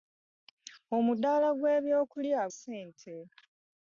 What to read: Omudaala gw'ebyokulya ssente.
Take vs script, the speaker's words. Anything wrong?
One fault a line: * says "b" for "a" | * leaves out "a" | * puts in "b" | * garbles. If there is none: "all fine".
all fine